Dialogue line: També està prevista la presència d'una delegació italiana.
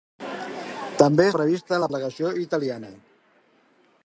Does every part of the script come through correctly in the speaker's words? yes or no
no